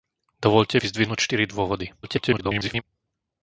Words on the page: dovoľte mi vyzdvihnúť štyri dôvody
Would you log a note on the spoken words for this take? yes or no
yes